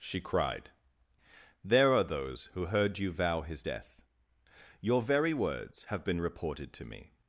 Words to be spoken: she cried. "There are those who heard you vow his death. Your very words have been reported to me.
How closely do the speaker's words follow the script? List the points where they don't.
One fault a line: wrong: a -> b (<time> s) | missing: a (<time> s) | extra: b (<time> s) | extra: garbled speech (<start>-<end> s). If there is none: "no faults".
no faults